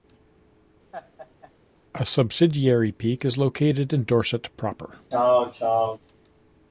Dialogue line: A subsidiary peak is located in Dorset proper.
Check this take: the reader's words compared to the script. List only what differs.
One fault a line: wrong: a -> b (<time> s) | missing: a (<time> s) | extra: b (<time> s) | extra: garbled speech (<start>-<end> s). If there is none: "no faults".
no faults